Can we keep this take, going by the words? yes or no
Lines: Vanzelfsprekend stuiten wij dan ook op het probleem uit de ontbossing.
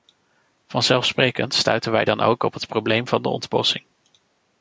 no